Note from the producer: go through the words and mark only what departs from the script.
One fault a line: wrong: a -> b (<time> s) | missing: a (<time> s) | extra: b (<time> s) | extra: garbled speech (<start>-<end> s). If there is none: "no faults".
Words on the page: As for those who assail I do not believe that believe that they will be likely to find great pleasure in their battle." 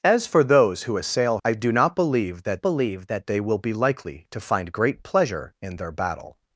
no faults